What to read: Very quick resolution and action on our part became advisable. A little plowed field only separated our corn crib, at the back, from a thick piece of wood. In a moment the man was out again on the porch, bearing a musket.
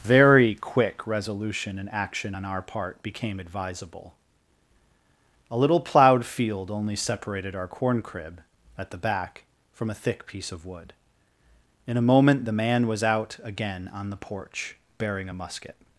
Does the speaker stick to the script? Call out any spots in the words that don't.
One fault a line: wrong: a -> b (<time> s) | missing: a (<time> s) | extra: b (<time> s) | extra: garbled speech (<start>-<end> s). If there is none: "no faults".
no faults